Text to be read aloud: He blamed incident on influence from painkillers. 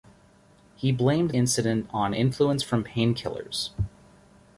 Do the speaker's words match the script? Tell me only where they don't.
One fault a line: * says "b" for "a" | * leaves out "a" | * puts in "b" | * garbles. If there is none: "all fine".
all fine